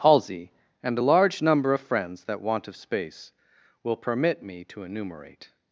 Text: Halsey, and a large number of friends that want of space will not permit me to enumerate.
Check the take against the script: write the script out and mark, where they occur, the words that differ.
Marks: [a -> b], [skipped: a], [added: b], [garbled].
Halsey, and a large number of friends that want of space will [skipped: not] permit me to enumerate.